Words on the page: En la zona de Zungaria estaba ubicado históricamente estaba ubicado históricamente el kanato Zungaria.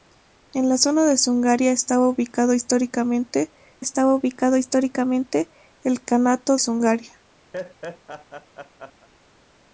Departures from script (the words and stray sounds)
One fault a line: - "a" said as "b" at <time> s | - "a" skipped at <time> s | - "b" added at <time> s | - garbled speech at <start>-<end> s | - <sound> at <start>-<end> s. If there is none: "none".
- laugh at 7.5-9.1 s